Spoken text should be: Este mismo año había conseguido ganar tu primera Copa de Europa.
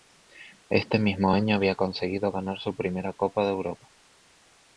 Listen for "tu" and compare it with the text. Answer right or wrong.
wrong